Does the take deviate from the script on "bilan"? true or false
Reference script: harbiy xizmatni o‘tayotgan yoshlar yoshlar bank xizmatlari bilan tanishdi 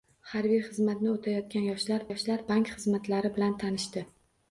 false